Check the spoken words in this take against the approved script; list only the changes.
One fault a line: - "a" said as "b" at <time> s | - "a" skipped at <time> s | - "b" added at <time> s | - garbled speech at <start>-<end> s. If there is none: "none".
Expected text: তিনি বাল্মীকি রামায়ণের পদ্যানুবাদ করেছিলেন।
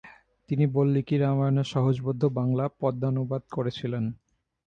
- "সহজবোধ্য বাংলা" added at 1.7 s